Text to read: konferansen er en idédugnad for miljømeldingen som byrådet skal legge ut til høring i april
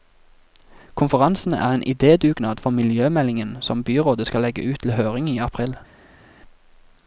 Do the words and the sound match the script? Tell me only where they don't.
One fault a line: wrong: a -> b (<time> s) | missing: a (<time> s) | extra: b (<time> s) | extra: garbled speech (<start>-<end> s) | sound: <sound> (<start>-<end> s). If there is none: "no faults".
no faults